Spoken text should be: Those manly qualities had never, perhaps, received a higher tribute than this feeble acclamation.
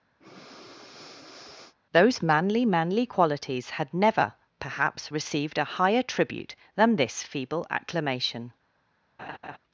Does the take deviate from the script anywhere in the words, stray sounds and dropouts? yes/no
yes